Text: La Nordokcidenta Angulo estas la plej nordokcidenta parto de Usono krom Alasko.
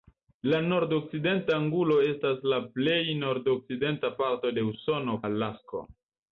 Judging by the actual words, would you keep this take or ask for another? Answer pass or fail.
fail